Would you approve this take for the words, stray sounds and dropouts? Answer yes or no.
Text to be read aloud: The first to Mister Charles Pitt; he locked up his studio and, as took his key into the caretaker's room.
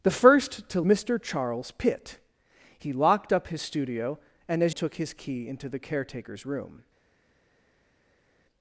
yes